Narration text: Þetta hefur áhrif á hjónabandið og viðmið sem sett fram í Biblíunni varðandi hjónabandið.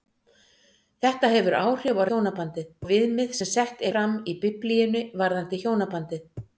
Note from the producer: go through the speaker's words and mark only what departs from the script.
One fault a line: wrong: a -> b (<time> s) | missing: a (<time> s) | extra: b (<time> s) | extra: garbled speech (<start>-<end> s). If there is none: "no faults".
no faults